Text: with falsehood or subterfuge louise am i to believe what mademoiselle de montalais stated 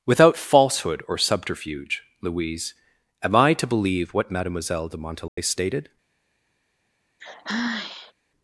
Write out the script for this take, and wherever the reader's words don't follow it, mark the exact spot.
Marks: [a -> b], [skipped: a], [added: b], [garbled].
[with -> without] falsehood or subterfuge louise am i to believe what mademoiselle de montalais stated